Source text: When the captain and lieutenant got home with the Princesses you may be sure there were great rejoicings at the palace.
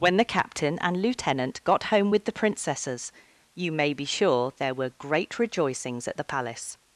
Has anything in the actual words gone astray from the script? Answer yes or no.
no